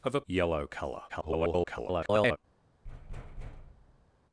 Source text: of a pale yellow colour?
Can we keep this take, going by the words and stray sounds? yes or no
no